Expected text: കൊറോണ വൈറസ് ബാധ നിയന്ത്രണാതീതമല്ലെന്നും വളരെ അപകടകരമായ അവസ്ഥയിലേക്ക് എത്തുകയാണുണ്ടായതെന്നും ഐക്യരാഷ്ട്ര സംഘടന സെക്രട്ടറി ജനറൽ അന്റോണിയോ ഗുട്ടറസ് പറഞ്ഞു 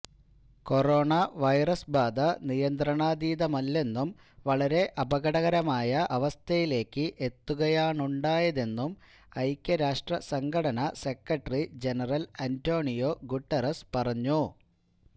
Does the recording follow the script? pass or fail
pass